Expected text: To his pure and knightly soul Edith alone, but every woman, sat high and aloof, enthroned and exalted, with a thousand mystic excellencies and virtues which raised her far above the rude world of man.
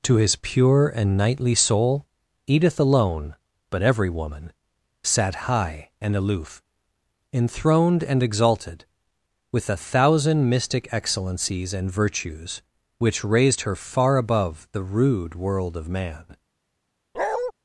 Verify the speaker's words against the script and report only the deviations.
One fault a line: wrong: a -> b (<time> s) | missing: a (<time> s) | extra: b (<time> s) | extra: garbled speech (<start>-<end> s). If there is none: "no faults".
no faults